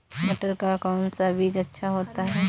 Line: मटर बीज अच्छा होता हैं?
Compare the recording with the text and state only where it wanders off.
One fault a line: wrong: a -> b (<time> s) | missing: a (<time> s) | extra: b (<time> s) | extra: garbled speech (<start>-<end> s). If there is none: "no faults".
extra: का कौन सा (0.6 s)